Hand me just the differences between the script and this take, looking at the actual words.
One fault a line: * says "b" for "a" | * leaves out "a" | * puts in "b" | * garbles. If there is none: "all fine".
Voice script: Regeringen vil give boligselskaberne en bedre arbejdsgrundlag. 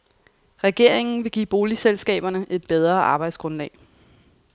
* says "et" for "en"